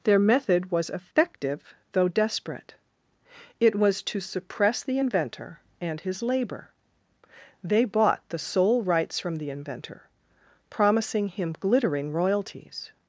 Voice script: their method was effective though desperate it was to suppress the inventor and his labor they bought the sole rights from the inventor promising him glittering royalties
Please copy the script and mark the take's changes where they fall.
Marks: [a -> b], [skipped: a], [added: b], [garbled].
their method was effective though desperate it was to suppress the inventor and his labor they bought the sole rights from the inventor promising him glittering royalties